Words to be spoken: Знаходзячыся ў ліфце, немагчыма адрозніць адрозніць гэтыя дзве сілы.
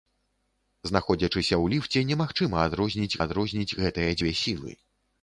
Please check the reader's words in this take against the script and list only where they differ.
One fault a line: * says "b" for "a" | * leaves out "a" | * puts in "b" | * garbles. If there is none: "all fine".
all fine